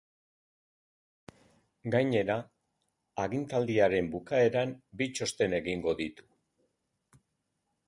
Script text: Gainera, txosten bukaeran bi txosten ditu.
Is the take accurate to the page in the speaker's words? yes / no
no